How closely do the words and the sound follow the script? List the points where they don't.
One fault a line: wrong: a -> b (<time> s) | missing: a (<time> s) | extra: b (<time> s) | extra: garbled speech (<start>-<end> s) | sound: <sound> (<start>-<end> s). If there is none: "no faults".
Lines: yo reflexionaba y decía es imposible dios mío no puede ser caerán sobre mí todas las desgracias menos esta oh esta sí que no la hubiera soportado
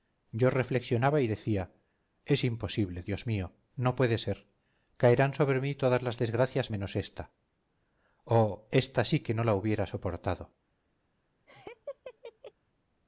sound: laugh (11.5-12.5 s)